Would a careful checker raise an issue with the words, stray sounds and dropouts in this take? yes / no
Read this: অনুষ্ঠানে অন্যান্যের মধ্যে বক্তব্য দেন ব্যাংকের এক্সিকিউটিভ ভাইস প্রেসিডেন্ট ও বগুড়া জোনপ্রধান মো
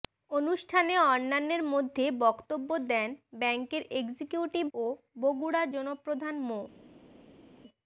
yes